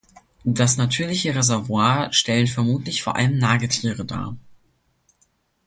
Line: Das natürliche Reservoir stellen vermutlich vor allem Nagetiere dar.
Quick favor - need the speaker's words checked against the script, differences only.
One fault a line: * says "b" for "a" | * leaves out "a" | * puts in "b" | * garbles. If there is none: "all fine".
all fine